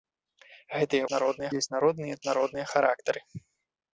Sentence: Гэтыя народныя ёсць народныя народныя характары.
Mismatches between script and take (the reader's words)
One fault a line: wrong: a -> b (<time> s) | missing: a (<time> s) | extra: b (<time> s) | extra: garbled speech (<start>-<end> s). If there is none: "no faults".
no faults